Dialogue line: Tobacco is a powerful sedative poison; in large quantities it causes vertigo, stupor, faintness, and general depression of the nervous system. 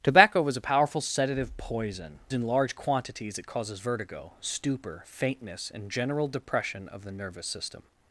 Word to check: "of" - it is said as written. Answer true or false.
true